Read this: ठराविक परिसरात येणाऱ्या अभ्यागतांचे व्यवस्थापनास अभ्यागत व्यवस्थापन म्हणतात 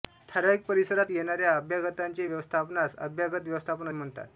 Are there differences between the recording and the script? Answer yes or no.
no